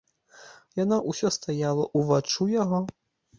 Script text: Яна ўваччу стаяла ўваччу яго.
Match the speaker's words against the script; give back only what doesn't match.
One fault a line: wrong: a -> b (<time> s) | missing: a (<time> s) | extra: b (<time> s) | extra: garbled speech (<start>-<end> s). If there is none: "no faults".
wrong: ўваччу -> ўсё (1.1 s)